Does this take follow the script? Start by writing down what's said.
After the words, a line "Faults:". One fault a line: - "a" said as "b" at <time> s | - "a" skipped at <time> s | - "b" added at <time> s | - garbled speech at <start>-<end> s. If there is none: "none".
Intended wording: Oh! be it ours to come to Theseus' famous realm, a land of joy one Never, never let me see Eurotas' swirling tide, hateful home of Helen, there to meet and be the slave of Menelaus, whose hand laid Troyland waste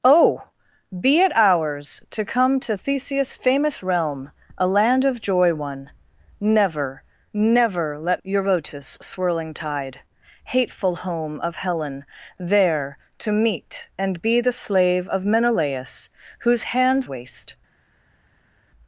Oh! be it ours to come to Theseus' famous realm, a land of joy one Never, never let Eurotas' swirling tide, hateful home of Helen, there to meet and be the slave of Menelaus, whose hand waste
Faults:
- "me see" skipped at 8.2 s
- "laid Troyland" skipped at 17.1 s